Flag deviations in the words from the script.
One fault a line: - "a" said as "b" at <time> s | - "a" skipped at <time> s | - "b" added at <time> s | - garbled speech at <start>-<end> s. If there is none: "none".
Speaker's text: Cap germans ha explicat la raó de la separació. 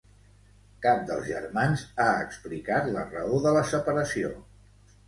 - "dels" added at 1.1 s